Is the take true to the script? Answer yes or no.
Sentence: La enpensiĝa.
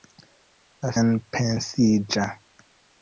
yes